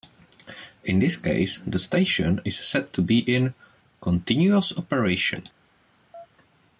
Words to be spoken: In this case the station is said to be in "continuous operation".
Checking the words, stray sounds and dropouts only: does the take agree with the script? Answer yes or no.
no